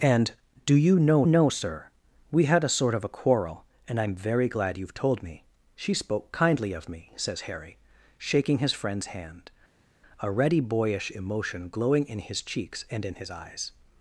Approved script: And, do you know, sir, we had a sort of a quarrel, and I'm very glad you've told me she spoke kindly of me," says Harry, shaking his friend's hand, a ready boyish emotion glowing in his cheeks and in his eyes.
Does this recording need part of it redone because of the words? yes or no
yes